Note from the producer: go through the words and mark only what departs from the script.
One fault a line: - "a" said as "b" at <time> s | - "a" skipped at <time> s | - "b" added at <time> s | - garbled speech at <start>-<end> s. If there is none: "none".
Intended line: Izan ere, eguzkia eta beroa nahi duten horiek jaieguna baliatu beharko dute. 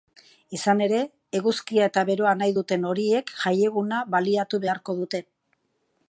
none